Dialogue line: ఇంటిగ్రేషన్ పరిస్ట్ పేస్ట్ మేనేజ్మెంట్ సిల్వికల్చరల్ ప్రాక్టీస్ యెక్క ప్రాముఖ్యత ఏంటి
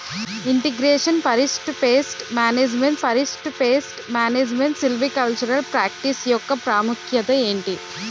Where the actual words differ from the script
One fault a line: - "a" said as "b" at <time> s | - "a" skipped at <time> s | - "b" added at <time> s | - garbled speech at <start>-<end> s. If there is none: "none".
- "పరిస్ట్ పేస్ట్ మేనేజ్మెంట్" added at 3.0 s